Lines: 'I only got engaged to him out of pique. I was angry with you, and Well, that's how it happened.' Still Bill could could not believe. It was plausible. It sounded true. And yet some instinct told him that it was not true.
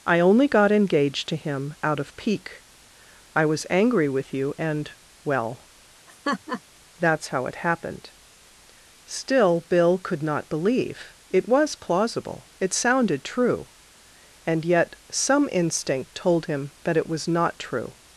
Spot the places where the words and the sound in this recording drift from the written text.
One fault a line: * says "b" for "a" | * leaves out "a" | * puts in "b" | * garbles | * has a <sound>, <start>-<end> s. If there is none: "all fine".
* has a laugh, 6.1-6.6 s
* leaves out "could"